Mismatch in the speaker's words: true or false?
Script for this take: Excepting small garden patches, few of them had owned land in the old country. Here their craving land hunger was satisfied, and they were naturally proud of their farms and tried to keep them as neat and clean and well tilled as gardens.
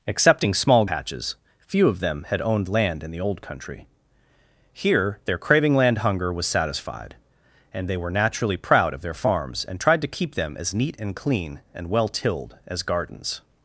true